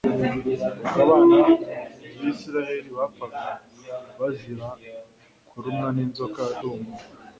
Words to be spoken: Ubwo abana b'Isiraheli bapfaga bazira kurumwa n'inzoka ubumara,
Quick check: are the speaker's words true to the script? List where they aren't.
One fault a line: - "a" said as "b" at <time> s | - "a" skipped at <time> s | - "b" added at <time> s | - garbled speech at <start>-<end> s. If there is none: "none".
none